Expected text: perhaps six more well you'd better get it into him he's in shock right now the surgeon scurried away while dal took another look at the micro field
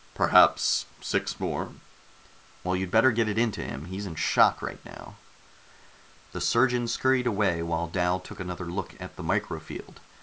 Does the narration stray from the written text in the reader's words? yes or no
no